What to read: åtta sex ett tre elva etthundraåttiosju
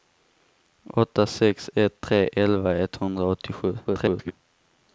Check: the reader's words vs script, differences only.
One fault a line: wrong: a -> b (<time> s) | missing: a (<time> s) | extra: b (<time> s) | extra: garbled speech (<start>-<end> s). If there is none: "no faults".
extra: garbled speech (3.8-4.3 s)